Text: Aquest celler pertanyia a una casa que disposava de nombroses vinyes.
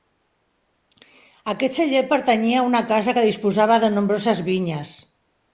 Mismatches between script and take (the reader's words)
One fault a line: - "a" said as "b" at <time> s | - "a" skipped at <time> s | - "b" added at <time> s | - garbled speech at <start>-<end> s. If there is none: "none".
none